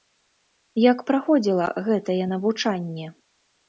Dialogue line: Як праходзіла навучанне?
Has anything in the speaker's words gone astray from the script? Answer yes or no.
yes